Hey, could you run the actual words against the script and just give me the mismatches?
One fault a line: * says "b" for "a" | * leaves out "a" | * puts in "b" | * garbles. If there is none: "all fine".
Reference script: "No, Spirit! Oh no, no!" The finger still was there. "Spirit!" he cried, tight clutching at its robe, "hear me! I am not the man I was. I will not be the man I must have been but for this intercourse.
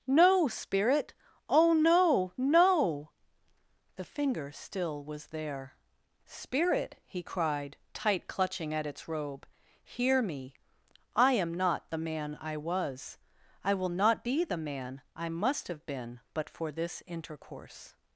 all fine